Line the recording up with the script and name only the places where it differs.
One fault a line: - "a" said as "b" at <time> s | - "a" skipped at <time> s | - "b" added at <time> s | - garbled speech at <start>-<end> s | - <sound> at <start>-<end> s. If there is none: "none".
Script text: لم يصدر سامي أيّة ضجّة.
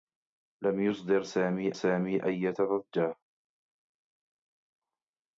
- "سامي" added at 1.7 s